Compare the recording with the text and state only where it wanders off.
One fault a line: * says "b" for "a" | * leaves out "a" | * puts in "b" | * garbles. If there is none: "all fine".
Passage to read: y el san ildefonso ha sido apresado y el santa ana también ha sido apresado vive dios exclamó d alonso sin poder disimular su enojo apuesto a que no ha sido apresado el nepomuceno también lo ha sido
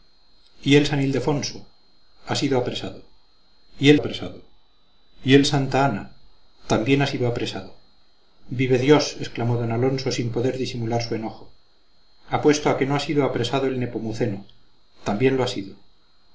* puts in "apresado y el"